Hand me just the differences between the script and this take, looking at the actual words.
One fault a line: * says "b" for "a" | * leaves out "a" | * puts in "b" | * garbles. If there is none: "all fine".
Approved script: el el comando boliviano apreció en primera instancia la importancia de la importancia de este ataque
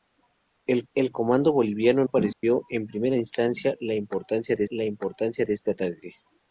all fine